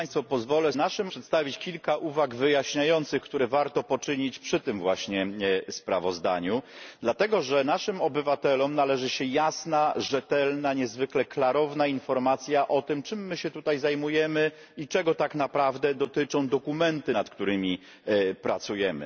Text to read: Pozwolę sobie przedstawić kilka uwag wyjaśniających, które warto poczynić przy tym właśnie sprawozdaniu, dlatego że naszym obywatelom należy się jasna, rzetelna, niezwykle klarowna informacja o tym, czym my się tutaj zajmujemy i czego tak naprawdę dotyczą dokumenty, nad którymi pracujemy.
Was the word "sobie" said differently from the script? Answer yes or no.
yes